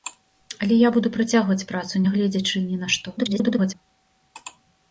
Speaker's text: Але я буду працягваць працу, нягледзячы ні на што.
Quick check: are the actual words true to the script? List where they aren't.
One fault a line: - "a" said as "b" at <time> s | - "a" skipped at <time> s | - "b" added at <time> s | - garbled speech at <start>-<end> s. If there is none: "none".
- garbled speech at 3.2-3.7 s